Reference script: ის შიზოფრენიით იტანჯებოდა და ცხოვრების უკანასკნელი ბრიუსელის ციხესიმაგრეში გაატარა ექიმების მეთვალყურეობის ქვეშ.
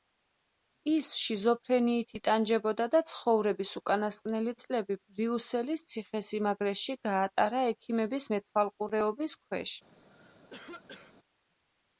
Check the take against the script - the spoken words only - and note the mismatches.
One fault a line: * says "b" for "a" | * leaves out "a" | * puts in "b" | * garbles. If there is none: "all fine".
* puts in "წლები"